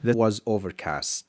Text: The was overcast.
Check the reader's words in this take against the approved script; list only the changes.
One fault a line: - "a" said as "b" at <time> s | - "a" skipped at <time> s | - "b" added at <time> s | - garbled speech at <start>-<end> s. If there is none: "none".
none